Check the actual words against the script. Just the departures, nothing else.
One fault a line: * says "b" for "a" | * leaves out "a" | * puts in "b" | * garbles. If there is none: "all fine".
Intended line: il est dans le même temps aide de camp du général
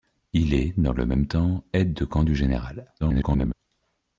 * garbles